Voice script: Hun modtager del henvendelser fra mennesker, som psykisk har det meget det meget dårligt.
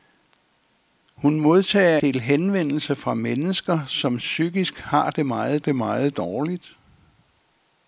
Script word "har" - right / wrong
right